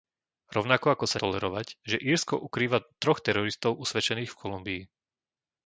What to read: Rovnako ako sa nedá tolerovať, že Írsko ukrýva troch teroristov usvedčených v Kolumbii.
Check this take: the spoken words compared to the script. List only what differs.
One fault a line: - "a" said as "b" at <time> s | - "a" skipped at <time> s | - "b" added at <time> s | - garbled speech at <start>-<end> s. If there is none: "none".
- "nedá" skipped at 1.2 s